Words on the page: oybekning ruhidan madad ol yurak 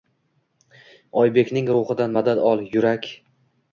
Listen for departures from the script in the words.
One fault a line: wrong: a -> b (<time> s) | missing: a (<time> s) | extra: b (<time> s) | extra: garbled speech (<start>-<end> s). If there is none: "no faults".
no faults